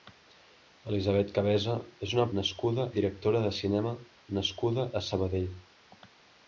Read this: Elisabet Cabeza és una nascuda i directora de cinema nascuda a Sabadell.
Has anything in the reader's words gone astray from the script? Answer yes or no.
no